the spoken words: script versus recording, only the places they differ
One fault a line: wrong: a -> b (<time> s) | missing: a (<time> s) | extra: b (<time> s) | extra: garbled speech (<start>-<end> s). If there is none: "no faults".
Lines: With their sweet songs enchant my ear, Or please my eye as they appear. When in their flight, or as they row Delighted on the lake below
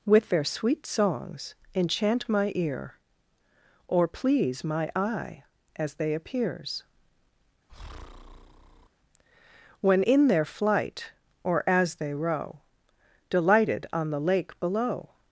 wrong: appear -> appears (6.1 s)